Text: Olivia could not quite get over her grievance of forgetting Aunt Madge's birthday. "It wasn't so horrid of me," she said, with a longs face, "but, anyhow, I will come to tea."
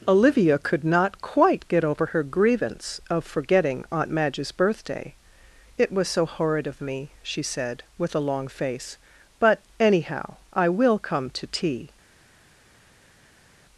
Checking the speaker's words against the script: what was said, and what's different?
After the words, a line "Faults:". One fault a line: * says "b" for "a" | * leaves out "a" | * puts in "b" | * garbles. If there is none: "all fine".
Olivia could not quite get over her grievance of forgetting Aunt Madge's birthday. "It was so horrid of me," she said, with a long face, "but, anyhow, I will come to tea."
Faults:
* says "was" for "wasn't"
* says "long" for "longs"